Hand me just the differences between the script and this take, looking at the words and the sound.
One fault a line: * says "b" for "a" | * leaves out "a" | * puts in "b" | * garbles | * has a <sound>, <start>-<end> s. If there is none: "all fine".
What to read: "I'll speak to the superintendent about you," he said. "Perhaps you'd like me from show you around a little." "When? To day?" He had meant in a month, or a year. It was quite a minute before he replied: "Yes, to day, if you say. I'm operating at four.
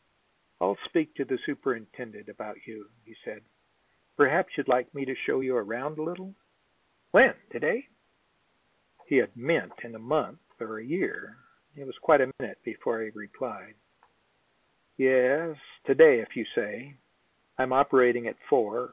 * says "to" for "from"
* has a dropout, 12.3-12.4 s